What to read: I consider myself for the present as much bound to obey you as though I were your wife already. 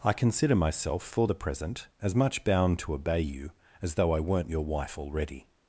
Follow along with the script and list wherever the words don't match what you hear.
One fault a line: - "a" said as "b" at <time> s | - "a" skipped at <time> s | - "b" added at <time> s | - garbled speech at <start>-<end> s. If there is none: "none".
- "were" said as "weren't" at 4.2 s